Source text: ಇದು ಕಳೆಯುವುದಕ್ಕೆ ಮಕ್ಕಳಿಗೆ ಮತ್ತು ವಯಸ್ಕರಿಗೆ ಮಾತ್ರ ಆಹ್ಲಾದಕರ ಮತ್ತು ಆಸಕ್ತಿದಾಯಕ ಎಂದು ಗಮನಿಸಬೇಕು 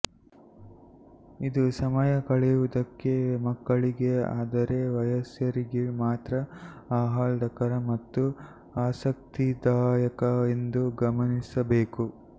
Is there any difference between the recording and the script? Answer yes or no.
yes